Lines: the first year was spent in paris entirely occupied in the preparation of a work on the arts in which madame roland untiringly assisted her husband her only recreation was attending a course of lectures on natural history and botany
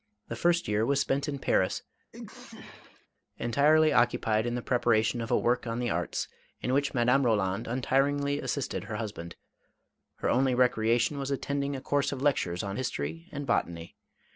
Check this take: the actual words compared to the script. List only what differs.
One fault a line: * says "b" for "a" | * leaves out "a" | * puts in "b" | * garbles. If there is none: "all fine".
* leaves out "natural"